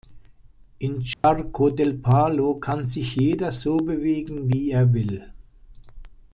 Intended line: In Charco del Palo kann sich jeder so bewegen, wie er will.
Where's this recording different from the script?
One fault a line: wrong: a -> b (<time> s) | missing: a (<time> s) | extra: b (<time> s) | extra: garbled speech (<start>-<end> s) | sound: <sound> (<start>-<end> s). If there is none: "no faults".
sound: dropout (1.1-1.2 s)